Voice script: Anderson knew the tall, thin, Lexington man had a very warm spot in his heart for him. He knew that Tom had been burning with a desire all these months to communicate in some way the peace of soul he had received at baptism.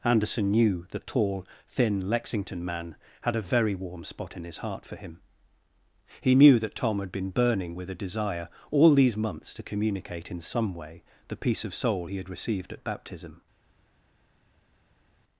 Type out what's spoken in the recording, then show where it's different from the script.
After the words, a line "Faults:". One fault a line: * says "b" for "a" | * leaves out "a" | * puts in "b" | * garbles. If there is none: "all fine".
Anderson knew the tall, thin, Lexington man had a very warm spot in his heart for him. He knew that Tom had been burning with a desire all these months to communicate in some way the peace of soul he had received at baptism.
Faults:
all fine